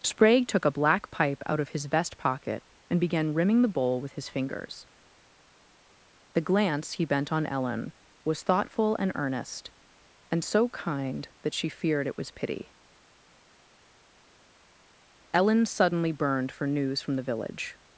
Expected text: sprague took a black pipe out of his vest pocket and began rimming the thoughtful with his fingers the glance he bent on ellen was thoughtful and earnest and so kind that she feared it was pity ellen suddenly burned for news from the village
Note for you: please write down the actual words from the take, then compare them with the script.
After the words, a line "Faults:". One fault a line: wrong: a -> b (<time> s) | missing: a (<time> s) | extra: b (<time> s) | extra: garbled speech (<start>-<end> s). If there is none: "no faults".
sprague took a black pipe out of his vest pocket and began rimming the bowl with his fingers the glance he bent on ellen was thoughtful and earnest and so kind that she feared it was pity ellen suddenly burned for news from the village
Faults:
wrong: thoughtful -> bowl (3.7 s)